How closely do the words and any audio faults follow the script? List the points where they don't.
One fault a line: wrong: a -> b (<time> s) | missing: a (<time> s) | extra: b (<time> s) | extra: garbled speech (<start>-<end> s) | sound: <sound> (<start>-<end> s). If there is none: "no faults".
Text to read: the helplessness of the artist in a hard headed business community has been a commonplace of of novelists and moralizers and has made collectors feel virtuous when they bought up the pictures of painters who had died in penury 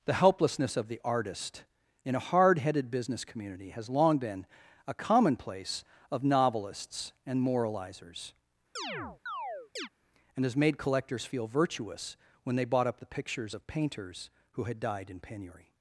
extra: long (3.9 s)
missing: of (6.2 s)
sound: chirp (8.8-9.9 s)